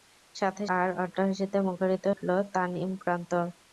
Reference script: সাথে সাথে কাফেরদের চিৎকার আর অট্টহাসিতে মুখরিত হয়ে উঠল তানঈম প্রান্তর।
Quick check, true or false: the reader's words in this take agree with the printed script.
false